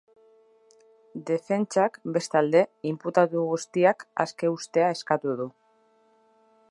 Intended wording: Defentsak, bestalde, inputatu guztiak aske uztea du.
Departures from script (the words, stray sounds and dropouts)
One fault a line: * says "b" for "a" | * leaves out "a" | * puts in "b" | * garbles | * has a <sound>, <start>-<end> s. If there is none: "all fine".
* puts in "eskatu"